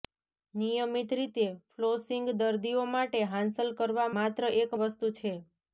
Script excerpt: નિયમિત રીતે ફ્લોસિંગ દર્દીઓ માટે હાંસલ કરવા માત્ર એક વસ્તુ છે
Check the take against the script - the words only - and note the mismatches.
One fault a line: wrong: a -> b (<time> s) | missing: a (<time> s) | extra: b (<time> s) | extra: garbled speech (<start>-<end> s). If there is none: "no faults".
no faults